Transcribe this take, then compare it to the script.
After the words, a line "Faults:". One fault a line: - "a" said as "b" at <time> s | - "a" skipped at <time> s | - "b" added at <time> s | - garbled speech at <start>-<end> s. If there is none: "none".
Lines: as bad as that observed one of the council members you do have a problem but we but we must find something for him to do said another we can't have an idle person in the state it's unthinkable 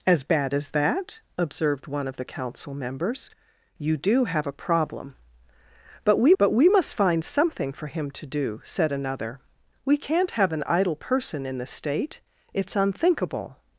as bad as that observed one of the council members you do have a problem but we but we must find something for him to do said another we can't have an idle person in the state it's unthinkable
Faults:
none